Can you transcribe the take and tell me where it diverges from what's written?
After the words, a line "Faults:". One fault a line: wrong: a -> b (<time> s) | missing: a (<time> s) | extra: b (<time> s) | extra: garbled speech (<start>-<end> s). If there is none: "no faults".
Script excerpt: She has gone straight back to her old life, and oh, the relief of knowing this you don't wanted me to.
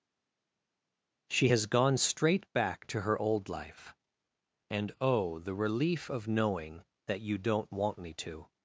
She has gone straight back to her old life, and oh, the relief of knowing that you don't want me to.
Faults:
wrong: this -> that (7.1 s)
wrong: wanted -> want (7.7 s)